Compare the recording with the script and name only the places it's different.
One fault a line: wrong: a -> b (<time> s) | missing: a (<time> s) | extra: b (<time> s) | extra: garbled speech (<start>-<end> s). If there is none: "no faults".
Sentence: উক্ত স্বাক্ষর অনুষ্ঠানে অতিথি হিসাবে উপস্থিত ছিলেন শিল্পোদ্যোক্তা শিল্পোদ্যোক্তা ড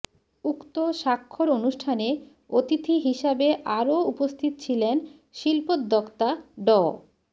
extra: আরও (3.8 s)
missing: শিল্পোদ্যোক্তা (6.3 s)